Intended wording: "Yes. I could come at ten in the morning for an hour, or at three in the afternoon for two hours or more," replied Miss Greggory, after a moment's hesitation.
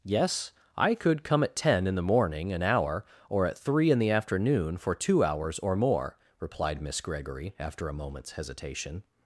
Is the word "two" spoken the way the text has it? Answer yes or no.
yes